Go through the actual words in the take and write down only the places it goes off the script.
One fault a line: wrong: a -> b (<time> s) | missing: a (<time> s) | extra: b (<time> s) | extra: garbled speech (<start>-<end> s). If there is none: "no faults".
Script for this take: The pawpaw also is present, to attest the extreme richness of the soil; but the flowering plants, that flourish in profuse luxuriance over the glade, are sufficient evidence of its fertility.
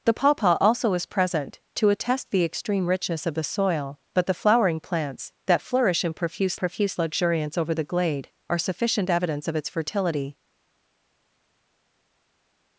extra: profuse (6.5 s)